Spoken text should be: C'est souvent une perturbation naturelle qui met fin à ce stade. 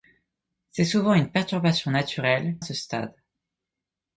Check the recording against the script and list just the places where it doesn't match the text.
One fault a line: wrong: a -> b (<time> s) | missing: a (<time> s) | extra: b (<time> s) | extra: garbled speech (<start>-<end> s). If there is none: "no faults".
missing: qui met fin (2.6 s)